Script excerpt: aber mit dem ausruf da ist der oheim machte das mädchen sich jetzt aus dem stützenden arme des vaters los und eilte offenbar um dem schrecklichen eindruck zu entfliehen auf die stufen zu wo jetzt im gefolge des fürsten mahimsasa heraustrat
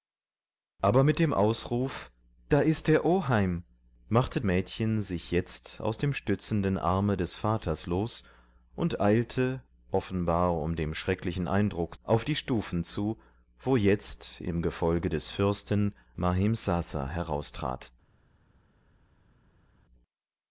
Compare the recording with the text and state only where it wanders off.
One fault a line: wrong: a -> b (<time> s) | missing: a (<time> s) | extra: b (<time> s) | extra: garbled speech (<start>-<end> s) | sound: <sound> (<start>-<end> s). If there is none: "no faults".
missing: das (4.4 s)
missing: zu entfliehen (12.0 s)